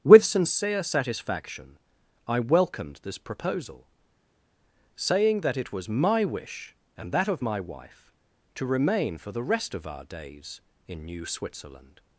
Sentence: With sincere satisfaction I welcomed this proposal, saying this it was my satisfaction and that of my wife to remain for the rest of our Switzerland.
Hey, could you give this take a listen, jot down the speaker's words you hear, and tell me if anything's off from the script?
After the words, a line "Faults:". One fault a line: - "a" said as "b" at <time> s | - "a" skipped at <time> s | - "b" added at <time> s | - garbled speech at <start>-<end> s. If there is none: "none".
With sincere satisfaction I welcomed this proposal, saying that it was my wish and that of my wife to remain for the rest of our days in New Switzerland.
Faults:
- "this" said as "that" at 5.4 s
- "satisfaction" said as "wish" at 6.2 s
- "days in New" added at 10.0 s